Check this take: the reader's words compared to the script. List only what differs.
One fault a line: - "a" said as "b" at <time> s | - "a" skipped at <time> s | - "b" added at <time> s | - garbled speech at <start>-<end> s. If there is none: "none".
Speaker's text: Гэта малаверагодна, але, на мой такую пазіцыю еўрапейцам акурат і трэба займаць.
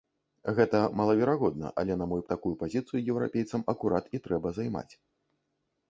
none